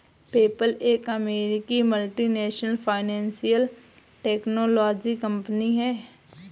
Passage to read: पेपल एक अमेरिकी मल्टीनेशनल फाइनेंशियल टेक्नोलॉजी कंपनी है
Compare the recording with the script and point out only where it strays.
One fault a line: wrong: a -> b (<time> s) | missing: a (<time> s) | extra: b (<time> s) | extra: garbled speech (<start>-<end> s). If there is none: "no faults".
no faults